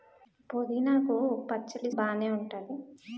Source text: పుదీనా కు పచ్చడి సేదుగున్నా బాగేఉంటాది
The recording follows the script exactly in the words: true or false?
false